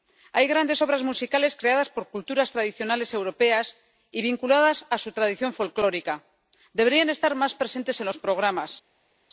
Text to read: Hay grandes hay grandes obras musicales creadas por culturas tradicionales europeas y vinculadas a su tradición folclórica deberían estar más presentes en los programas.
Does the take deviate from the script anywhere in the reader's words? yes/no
yes